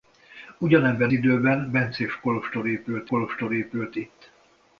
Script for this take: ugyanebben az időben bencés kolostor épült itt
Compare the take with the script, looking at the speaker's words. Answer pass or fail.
fail